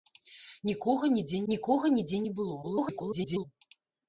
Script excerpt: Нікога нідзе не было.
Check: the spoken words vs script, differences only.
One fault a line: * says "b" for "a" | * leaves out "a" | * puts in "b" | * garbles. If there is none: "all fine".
* puts in "нікога нідзе"
* garbles